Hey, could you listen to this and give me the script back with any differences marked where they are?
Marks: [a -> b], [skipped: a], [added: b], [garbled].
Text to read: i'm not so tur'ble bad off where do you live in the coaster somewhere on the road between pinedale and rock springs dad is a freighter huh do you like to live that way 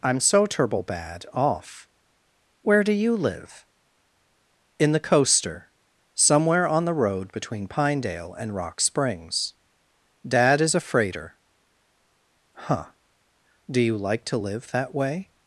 i'm [skipped: not] so tur'ble bad off where do you live in the coaster somewhere on the road between pinedale and rock springs dad is a freighter huh do you like to live that way